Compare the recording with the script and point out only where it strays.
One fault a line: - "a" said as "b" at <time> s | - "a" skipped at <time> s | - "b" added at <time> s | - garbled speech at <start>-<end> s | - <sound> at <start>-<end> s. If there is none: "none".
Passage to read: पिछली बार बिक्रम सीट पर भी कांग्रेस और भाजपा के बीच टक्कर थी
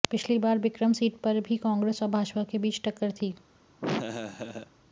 - laugh at 3.8-4.7 s